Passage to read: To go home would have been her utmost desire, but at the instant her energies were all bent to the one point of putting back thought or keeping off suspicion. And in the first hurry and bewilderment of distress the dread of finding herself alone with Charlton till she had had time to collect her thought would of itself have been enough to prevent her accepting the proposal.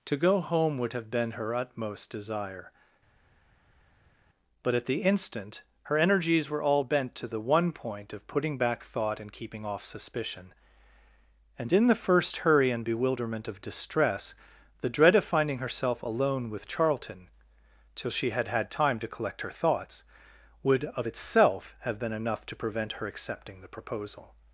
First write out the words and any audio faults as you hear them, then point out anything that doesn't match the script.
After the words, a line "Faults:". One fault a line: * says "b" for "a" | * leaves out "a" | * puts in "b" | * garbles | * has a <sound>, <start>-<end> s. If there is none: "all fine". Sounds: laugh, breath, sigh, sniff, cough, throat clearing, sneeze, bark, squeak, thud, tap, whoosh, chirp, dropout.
To go home would have been her utmost desire, but at the instant her energies were all bent to the one point of putting back thought and keeping off suspicion. And in the first hurry and bewilderment of distress the dread of finding herself alone with Charlton till she had had time to collect her thoughts would of itself have been enough to prevent her accepting the proposal.
Faults:
* says "and" for "or"
* says "thoughts" for "thought"